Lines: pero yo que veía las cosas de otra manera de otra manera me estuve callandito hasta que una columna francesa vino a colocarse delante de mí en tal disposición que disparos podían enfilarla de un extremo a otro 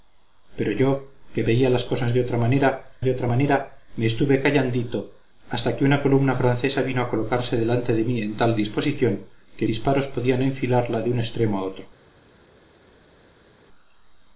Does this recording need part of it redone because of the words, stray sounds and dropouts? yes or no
no